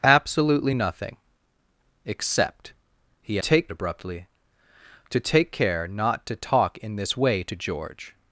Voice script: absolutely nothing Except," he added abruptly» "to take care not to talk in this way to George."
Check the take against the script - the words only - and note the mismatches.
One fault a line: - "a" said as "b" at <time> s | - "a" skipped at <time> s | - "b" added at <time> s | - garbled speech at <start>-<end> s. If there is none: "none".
- "added" said as "take" at 3.4 s